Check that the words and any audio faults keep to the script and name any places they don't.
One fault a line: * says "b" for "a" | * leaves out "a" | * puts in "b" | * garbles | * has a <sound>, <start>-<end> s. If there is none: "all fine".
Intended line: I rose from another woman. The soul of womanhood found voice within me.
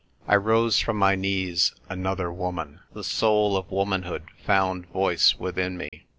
* puts in "my knees"
* has a dropout, 5.9-5.9 s